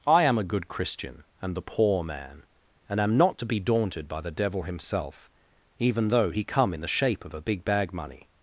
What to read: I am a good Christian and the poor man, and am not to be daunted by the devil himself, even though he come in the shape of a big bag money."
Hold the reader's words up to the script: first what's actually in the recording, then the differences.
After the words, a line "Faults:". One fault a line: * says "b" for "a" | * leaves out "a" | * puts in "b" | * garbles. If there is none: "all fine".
I am a good Christian and the poor man, and am not to be daunted by the devil himself, even though he come in the shape of a big bag money."
Faults:
all fine